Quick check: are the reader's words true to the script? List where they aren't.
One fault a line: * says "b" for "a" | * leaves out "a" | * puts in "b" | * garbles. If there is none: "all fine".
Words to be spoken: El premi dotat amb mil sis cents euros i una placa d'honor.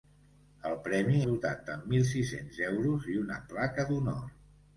all fine